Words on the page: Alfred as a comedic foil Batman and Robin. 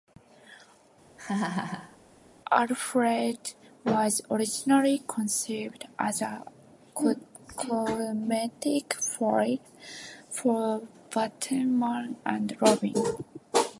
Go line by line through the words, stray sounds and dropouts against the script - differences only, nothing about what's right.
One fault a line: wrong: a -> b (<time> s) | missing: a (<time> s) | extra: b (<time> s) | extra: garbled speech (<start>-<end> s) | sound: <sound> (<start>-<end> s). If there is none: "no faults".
sound: laugh (1.2-2.0 s)
extra: was originally conceived (3.8 s)
extra: for (10.3 s)